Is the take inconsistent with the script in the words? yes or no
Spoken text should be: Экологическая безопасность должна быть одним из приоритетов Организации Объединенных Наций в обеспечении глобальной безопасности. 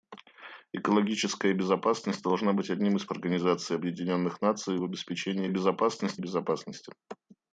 yes